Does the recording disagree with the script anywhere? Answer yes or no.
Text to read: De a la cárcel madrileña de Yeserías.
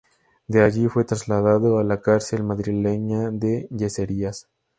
yes